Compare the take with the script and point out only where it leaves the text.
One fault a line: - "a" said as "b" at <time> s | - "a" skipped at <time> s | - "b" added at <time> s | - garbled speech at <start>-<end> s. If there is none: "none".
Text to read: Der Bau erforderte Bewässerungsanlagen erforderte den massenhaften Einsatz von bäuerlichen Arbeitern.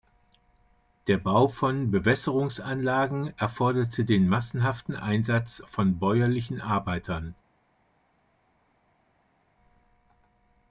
- "erforderte" said as "von" at 1.5 s